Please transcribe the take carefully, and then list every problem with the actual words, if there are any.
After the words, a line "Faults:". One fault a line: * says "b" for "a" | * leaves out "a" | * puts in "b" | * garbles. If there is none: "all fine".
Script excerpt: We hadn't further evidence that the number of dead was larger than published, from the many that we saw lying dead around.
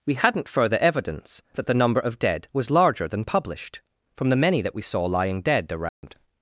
We hadn't further evidence that the number of dead was larger than published, from the many that we saw lying dead around.
Faults:
all fine